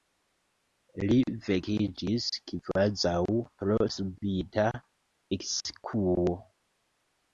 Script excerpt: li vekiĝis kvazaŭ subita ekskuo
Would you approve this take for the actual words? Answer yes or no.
no